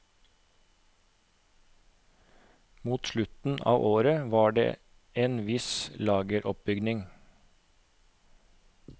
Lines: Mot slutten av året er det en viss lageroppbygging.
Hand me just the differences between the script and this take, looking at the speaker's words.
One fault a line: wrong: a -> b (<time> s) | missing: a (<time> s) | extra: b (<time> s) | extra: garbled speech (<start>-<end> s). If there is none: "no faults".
wrong: er -> var (4.3 s)